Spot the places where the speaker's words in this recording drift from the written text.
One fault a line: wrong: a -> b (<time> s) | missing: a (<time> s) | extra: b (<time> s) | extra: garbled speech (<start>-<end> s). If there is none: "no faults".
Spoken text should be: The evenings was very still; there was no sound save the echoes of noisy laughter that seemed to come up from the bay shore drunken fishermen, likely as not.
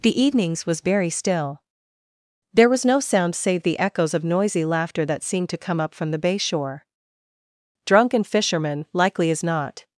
no faults